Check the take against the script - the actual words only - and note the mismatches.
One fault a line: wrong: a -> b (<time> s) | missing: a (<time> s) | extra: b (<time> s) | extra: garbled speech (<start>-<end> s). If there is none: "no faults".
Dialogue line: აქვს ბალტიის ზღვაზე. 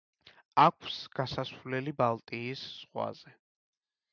extra: გასასვლელი (1.2 s)